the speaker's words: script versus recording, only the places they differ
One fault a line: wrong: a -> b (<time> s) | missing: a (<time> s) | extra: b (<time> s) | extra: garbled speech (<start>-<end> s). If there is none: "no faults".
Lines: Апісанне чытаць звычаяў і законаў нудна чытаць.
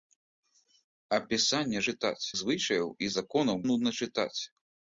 no faults